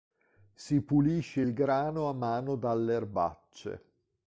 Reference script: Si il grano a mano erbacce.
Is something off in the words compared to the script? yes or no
yes